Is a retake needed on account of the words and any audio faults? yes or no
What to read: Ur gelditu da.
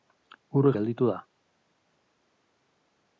no